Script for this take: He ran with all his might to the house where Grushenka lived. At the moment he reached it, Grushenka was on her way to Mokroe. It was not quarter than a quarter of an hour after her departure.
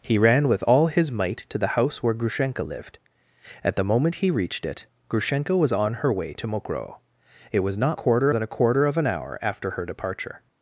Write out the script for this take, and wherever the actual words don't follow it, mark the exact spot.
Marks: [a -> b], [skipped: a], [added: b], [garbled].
He ran with all his might to the house where Grushenka lived. At the moment he reached it, Grushenka was on her way to Mokroe. It was not quarter than a quarter of an hour after her departure.